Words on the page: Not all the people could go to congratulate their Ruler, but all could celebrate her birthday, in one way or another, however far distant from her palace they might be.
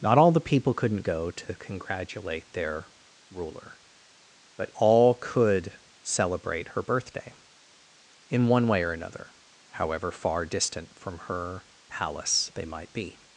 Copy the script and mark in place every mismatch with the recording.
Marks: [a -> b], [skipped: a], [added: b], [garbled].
Not all the people [could -> couldn't] go to congratulate their Ruler, but all could celebrate her birthday, in one way or another, however far distant from her palace they might be.